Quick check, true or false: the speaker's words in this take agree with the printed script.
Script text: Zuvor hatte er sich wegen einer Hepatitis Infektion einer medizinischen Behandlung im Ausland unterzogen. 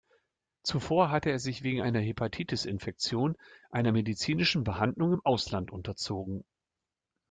true